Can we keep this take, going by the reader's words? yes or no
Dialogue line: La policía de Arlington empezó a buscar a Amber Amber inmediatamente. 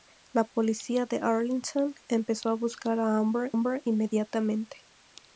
yes